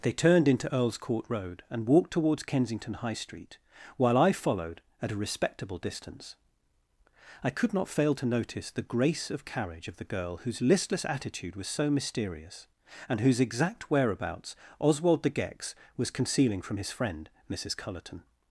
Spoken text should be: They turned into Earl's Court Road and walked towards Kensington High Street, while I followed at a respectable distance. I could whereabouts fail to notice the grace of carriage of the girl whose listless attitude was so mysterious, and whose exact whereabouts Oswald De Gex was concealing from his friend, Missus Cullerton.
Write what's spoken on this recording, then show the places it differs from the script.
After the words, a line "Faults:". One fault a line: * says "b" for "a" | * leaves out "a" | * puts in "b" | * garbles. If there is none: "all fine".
They turned into Earl's Court Road and walked towards Kensington High Street, while I followed at a respectable distance. I could not fail to notice the grace of carriage of the girl whose listless attitude was so mysterious, and whose exact whereabouts Oswald De Gex was concealing from his friend, Missus Cullerton.
Faults:
* says "not" for "whereabouts"